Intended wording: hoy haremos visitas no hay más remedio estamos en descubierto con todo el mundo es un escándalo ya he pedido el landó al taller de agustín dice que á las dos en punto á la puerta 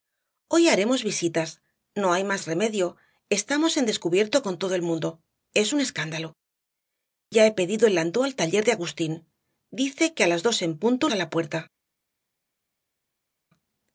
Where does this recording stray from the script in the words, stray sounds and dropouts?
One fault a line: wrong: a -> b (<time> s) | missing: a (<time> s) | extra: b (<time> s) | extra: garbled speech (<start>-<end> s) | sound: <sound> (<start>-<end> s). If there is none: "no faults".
no faults